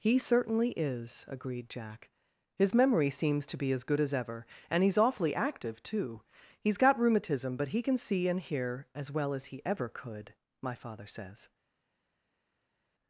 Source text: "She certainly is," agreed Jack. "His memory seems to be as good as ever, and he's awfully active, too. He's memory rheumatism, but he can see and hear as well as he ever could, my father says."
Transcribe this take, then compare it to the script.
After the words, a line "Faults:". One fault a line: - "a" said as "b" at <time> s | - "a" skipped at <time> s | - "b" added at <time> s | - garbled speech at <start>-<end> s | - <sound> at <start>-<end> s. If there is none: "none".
"He certainly is," agreed Jack. "His memory seems to be as good as ever, and he's awfully active, too. He's got rheumatism, but he can see and hear as well as he ever could, my father says."
Faults:
- "She" said as "He" at 0.0 s
- "memory" said as "got" at 6.8 s